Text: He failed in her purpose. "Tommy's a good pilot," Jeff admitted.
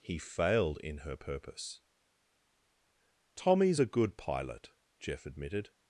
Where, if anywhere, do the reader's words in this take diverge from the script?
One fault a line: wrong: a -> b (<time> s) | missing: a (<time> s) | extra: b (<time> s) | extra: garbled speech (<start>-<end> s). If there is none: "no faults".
no faults